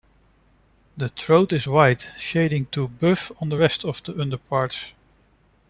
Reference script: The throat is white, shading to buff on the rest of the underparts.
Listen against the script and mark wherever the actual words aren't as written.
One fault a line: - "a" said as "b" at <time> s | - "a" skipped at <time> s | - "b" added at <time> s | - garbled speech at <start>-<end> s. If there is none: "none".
none